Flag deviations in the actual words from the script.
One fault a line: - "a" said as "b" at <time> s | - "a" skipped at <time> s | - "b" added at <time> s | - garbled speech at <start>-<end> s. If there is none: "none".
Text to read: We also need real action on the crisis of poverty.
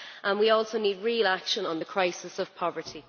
none